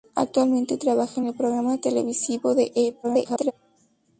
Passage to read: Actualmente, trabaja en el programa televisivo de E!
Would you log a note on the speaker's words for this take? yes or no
yes